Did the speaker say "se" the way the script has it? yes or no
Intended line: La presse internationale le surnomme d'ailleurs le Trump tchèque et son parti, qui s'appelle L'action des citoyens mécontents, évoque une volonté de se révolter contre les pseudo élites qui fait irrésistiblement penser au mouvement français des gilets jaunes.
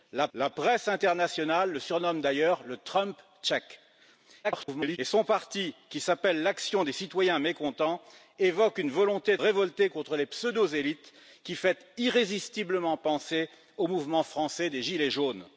no